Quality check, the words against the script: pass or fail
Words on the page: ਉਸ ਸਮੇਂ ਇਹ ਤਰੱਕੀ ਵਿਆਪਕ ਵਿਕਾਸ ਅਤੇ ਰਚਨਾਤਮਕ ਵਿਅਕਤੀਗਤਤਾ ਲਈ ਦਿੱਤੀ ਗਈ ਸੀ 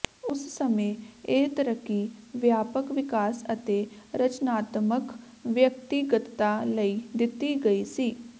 pass